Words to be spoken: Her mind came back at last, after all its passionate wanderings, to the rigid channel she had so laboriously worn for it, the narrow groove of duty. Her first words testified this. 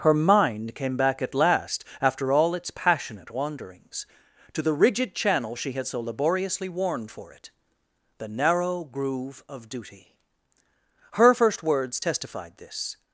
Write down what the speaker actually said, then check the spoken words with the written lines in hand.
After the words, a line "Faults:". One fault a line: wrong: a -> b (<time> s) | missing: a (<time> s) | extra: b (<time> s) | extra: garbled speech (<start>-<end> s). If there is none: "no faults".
Her mind came back at last, after all its passionate wanderings, to the rigid channel she had so laboriously worn for it, the narrow groove of duty. Her first words testified this.
Faults:
no faults